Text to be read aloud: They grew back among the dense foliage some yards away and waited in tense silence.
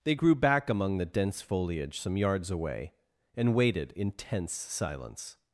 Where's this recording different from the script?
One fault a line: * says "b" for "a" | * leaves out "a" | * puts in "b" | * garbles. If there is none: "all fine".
all fine